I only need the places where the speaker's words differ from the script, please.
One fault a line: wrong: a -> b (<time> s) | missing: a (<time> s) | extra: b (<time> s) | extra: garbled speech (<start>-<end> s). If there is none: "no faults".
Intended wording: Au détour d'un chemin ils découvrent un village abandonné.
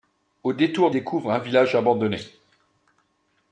missing: d'un chemin ils (0.9 s)